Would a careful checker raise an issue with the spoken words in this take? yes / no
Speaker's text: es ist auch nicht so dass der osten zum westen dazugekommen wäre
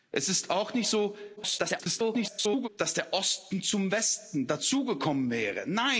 yes